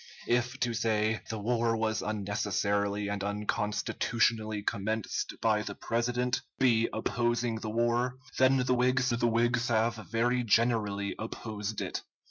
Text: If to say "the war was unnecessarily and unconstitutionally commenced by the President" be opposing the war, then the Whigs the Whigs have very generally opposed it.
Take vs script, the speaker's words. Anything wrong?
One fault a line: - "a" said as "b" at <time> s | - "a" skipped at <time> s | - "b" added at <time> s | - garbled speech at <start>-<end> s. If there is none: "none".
none